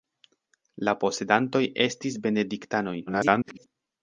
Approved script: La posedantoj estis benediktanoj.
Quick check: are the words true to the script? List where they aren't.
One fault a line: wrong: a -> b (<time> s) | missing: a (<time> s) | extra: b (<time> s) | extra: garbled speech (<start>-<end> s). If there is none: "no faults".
extra: garbled speech (3.1-3.6 s)